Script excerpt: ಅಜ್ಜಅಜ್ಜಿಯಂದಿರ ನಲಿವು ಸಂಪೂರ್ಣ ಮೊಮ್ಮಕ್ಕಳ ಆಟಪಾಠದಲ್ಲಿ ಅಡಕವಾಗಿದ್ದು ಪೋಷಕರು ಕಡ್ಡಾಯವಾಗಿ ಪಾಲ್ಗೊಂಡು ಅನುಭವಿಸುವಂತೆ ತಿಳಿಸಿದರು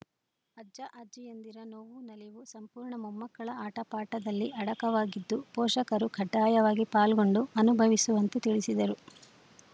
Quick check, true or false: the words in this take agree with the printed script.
false